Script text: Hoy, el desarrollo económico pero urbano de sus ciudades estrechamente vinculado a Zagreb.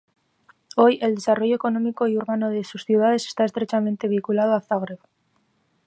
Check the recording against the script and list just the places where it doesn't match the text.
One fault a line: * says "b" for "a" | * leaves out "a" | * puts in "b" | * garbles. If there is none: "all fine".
* says "y" for "pero"
* puts in "está"